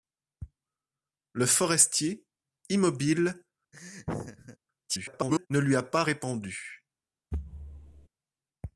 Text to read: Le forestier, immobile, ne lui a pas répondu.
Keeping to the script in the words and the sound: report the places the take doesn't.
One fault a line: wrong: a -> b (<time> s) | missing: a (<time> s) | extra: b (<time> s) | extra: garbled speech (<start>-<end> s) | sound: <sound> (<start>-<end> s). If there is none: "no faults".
sound: laugh (3.7-4.6 s)
extra: garbled speech (4.9-5.5 s)
sound: thud (7.3-8.1 s)